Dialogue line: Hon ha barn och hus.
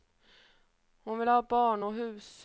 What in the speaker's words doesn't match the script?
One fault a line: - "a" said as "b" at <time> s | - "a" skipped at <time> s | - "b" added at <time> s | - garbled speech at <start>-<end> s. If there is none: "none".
- "vill" added at 1.2 s